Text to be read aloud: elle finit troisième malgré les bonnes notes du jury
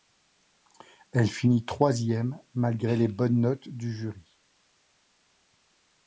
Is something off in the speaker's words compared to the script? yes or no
no